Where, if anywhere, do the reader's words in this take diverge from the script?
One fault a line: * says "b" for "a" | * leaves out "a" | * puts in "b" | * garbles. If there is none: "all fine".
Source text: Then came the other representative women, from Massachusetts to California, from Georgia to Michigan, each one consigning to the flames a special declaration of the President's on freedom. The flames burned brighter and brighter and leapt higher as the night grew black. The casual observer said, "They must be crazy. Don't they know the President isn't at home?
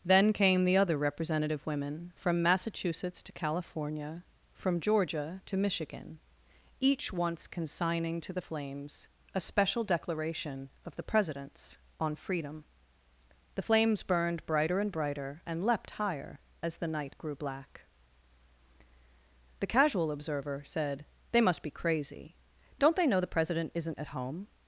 * says "once" for "one"